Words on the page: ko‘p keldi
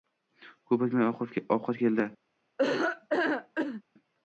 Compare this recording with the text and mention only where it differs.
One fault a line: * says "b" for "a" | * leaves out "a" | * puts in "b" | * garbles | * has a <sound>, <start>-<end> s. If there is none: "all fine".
* puts in "o‘tmay ovqat"
* has a laugh, 2.6-3.8 s